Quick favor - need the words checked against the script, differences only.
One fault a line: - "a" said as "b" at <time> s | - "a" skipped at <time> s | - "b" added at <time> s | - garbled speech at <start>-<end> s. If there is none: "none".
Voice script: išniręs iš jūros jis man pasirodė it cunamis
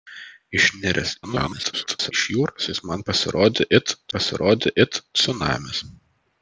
- garbled speech at 1.2-2.1 s
- "pasirodė it" added at 4.2 s